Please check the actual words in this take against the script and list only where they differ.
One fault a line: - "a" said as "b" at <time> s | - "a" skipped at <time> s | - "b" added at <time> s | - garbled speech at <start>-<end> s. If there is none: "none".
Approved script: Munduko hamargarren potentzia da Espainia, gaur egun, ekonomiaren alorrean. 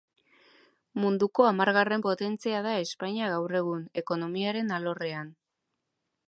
none